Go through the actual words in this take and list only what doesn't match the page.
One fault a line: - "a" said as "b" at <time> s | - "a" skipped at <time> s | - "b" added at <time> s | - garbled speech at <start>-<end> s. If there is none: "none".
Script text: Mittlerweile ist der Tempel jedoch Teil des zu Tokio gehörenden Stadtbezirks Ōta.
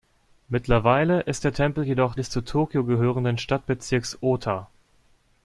- "Teil" skipped at 2.1 s